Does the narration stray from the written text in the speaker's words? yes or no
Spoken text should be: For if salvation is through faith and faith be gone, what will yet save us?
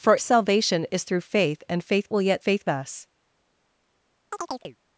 yes